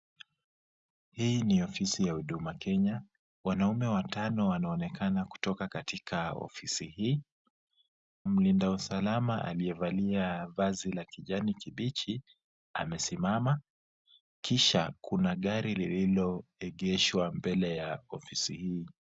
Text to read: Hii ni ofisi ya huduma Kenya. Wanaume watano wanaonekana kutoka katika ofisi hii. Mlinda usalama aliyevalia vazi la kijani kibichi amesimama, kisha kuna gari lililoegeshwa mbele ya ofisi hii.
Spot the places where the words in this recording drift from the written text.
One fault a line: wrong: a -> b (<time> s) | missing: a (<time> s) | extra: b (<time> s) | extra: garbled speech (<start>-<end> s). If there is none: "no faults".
no faults